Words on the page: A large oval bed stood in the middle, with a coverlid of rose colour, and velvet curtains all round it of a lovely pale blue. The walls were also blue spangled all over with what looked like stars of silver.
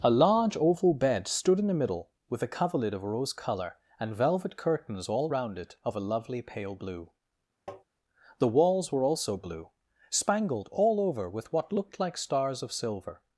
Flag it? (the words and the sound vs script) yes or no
yes